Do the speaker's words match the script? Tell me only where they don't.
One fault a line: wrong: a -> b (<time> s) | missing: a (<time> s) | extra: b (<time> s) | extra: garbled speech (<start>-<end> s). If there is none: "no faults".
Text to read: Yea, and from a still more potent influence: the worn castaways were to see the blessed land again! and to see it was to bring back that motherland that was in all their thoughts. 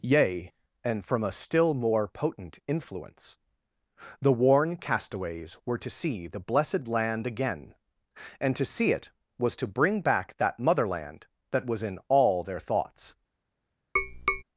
no faults